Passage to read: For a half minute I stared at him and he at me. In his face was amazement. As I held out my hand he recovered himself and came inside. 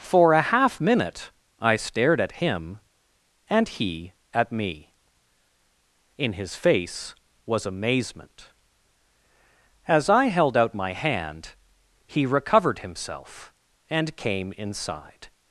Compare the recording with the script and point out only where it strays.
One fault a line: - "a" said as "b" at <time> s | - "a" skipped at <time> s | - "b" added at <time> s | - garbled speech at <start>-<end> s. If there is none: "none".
none